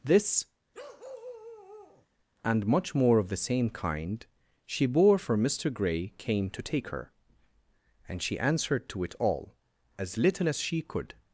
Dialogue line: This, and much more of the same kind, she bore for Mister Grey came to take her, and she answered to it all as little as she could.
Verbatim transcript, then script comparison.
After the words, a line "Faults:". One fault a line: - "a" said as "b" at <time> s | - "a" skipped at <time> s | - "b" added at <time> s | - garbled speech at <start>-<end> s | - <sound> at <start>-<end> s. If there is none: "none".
This, and much more of the same kind, she bore for Mister Grey came to take her, and she answered to it all as little as she could.
Faults:
- bark at 0.7-2.1 s